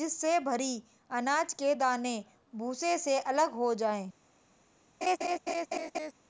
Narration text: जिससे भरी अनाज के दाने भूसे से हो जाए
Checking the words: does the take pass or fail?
fail